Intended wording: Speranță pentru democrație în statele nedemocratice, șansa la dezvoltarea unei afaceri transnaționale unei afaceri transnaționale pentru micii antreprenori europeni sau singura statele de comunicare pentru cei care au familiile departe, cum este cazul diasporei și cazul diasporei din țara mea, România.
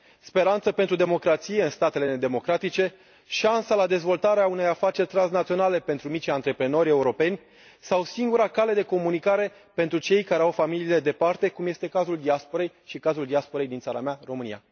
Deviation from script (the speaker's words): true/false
true